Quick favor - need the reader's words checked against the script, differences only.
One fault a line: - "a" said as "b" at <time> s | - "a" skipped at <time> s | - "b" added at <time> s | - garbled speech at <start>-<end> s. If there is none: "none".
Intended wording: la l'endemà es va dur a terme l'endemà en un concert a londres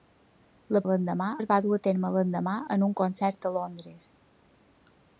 none